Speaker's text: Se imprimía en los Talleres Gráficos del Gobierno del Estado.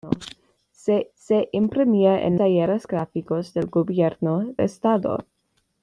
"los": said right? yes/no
no